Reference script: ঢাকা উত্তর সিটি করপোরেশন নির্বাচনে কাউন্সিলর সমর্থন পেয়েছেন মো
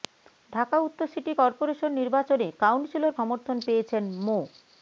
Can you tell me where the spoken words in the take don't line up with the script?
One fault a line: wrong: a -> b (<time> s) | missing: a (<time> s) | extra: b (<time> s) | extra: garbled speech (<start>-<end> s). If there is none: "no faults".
no faults